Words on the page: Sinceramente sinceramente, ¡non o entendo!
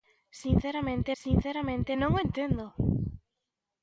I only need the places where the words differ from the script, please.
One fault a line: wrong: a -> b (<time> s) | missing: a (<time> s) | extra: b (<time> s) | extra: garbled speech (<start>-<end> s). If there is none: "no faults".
no faults